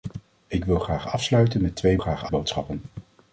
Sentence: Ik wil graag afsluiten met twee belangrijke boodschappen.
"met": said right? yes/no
yes